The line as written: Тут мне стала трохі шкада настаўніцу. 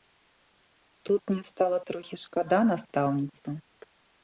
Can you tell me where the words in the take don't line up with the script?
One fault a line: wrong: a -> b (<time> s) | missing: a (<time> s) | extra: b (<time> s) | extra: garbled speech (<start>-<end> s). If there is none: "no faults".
no faults